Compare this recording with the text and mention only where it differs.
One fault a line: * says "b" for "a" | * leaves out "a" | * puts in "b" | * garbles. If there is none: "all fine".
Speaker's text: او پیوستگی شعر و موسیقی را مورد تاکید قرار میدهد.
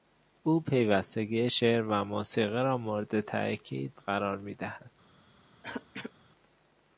all fine